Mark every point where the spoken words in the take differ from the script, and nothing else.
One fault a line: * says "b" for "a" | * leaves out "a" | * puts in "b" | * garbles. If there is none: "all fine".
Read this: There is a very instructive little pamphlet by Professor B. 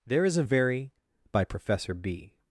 * leaves out "instructive little pamphlet"